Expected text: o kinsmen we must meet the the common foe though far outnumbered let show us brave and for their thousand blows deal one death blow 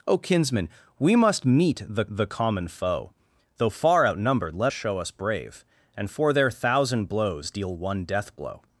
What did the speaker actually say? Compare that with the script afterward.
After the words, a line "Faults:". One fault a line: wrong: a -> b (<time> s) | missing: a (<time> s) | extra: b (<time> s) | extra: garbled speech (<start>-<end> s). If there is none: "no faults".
o kinsmen we must meet the the common foe though far outnumbered let show us brave and for their thousand blows deal one death blow
Faults:
no faults